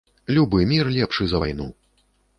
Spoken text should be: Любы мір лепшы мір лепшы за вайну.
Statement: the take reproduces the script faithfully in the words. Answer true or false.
false